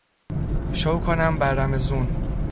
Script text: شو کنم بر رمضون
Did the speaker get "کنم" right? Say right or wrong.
right